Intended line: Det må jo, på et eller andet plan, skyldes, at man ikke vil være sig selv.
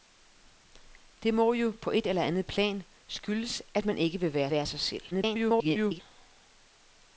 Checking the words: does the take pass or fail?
fail